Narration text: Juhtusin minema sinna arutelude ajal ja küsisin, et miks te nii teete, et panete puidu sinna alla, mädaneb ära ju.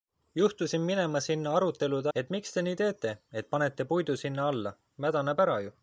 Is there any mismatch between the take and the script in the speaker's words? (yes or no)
yes